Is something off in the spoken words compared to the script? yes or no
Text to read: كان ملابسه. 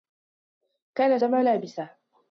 no